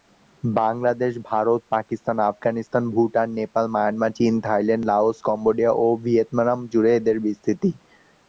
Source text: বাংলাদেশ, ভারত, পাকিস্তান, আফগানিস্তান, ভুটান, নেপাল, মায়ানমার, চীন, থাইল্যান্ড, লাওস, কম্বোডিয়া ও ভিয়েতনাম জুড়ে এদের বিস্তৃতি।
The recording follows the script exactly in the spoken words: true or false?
true